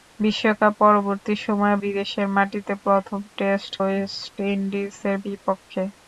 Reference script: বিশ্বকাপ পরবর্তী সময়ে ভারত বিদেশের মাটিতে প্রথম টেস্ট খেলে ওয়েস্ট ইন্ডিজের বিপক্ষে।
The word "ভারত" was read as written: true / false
false